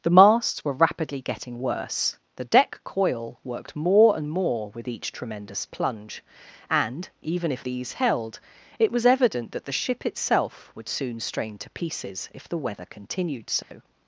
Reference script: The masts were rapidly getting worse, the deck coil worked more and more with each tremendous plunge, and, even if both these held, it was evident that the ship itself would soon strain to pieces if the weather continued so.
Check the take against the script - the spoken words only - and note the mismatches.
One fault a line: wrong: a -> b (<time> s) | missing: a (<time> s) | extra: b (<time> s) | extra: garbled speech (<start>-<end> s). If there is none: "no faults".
missing: both (7.6 s)